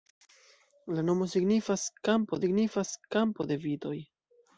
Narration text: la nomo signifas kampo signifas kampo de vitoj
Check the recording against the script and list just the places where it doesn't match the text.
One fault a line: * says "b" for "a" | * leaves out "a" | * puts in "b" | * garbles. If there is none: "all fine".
all fine